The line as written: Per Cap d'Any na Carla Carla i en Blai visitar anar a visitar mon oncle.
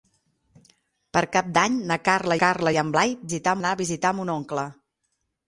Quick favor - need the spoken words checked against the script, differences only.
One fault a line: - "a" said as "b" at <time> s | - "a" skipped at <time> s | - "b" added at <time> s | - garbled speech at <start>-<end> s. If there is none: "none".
none